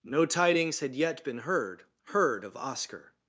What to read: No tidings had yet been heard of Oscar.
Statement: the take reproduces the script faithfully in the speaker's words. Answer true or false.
false